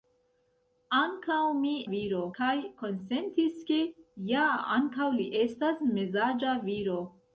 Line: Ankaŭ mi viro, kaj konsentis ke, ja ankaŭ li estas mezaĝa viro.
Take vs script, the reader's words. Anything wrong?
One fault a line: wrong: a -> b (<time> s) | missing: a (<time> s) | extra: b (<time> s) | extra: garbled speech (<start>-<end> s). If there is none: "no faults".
no faults